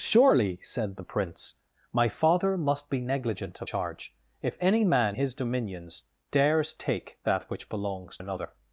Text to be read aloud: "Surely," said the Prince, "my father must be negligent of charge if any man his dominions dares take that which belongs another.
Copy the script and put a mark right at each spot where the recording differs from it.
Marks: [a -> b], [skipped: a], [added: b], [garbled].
"Surely," said the Prince, "my father must be negligent of charge if any man his dominions dares take that which belongs another.